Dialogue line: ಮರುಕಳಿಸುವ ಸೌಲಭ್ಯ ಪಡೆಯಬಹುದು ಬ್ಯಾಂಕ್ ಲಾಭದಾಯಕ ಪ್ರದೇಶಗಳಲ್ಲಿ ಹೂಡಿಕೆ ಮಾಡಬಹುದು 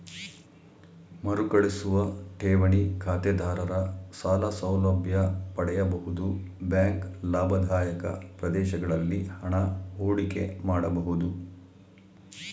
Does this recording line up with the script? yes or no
no